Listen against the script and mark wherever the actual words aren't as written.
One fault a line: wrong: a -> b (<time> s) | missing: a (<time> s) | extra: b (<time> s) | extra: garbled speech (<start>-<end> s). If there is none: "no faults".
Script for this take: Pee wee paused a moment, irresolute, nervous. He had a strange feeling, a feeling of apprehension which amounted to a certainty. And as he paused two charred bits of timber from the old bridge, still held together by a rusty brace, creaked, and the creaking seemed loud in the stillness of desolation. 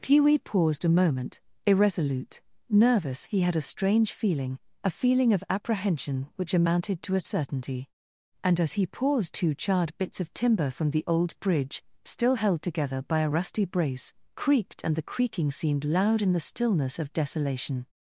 no faults